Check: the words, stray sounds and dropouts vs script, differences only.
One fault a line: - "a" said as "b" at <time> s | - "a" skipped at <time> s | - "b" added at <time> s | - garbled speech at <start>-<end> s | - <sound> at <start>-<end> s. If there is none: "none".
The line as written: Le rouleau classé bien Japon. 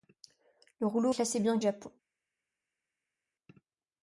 none